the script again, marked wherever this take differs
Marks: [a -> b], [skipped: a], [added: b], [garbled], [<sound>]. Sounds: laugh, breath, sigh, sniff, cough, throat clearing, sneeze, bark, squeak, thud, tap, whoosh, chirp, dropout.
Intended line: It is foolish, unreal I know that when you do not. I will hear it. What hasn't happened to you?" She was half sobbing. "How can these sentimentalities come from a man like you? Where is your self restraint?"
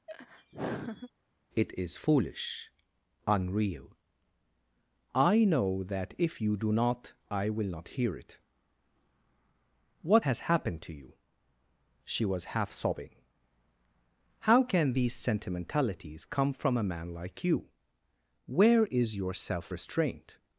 [laugh] It is foolish, unreal I know that [when -> if] you do not. I will [added: not] hear it. What [hasn't -> has] happened to you?" She was half sobbing. "How can these sentimentalities come from a man like you? Where is your self restraint?"